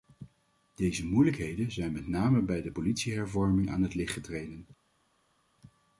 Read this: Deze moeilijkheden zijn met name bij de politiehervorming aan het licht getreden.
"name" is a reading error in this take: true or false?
false